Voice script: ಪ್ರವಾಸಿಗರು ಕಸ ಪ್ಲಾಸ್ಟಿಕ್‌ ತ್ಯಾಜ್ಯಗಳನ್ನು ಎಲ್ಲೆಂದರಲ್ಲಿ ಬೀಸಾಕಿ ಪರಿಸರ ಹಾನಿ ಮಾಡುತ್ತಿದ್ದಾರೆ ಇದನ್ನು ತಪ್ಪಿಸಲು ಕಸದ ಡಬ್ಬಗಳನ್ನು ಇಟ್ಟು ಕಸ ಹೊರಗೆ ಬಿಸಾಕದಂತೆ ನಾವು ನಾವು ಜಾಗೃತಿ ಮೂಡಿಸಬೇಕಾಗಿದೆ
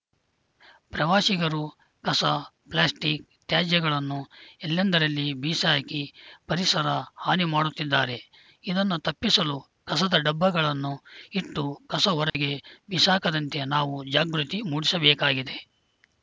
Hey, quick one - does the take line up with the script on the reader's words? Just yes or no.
no